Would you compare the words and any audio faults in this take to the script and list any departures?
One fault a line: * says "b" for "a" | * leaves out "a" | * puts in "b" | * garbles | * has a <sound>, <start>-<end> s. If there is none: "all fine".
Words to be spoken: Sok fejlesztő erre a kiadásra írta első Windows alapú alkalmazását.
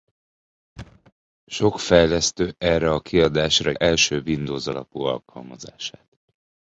* has a thud, 0.8-1.1 s
* leaves out "írta"